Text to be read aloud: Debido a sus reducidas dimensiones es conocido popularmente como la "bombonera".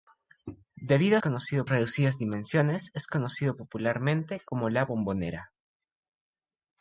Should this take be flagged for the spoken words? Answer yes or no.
yes